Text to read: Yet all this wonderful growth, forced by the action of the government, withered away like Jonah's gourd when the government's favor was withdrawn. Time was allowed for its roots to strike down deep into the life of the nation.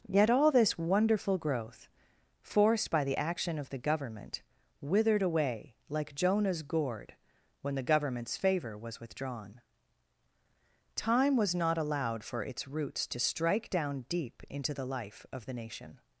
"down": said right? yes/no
yes